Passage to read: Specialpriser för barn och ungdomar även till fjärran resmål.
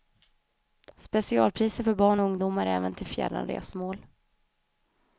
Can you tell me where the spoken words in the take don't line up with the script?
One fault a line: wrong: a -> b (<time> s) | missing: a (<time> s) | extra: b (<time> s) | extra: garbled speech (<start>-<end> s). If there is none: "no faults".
no faults